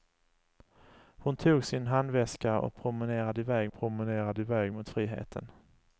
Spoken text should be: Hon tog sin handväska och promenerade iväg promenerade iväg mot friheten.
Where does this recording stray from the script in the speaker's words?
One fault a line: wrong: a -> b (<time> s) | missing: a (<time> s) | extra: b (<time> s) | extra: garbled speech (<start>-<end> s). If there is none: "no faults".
no faults